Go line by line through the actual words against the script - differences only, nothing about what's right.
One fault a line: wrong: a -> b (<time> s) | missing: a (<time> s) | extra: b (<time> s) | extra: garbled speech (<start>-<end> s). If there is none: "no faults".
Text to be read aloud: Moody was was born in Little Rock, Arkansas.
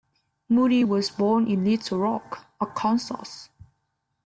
missing: was (1.1 s)